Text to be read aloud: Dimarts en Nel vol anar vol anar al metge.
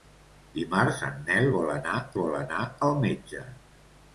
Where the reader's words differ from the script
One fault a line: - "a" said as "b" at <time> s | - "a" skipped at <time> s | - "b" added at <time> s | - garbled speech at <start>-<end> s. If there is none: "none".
none